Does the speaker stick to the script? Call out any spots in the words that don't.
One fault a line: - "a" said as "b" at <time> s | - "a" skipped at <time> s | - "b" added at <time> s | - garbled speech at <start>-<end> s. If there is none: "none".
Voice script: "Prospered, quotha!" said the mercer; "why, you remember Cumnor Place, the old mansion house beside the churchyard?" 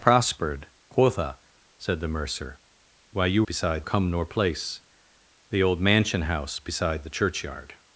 - "remember" said as "beside" at 3.4 s